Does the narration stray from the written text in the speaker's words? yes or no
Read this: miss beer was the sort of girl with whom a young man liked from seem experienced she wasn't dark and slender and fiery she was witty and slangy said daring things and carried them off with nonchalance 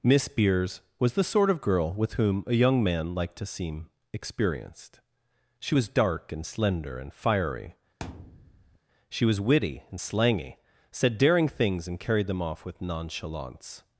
yes